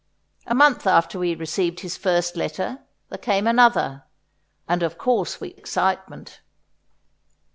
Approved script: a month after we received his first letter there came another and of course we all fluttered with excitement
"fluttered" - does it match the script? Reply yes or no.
no